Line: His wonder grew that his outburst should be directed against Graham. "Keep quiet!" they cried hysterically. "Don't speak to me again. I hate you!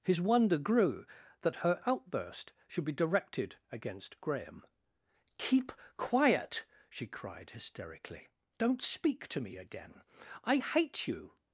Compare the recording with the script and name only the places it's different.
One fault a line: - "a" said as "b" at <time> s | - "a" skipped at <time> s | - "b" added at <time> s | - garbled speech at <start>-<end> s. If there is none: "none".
- "his" said as "her" at 1.6 s
- "they" said as "she" at 6.9 s